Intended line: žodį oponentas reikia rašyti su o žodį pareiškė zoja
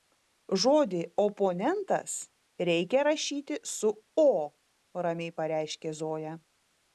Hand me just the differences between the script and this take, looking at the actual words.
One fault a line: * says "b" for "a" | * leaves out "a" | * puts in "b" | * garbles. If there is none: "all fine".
* says "ramiai" for "žodį"